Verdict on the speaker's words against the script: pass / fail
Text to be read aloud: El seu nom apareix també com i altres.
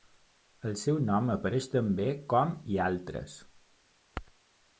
pass